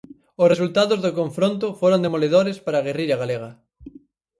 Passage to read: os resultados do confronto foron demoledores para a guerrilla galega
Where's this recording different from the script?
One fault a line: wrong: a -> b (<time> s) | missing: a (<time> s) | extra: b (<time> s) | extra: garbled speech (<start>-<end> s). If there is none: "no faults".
no faults